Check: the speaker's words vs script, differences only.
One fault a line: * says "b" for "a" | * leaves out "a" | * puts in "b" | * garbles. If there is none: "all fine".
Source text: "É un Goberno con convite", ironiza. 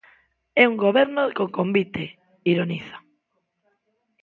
all fine